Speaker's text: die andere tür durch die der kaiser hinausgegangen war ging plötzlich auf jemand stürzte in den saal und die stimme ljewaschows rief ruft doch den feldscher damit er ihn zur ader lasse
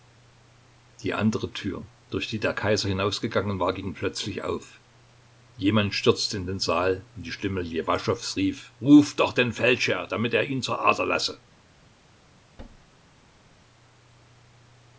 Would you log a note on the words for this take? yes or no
no